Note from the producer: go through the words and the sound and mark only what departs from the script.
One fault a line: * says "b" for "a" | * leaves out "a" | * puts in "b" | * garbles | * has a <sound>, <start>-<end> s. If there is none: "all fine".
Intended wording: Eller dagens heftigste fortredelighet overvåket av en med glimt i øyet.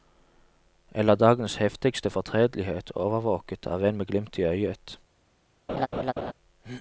* has a laugh, 5.7-6.3 s